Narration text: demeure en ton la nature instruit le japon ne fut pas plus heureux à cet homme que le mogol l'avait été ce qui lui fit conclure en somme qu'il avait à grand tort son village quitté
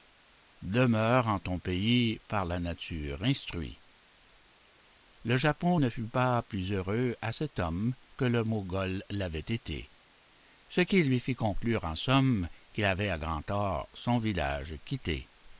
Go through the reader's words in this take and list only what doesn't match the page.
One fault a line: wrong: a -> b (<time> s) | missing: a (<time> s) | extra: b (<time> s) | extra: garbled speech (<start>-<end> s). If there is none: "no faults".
extra: pays par (1.6 s)